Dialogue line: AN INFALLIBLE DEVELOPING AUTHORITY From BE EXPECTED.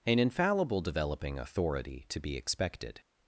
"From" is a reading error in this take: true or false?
true